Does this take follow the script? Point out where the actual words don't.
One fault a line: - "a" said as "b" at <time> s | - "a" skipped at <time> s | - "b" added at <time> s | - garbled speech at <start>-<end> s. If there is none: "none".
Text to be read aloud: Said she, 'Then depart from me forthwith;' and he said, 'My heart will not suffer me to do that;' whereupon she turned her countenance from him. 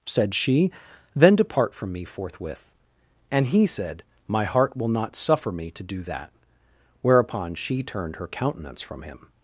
none